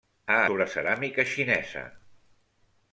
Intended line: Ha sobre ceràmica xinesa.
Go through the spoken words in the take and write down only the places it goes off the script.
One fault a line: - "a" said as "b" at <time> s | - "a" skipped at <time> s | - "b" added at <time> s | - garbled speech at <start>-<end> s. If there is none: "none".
none